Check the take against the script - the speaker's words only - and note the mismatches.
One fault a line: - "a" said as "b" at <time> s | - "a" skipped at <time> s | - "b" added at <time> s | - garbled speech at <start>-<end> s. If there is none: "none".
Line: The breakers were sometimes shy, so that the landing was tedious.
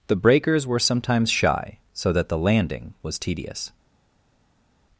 none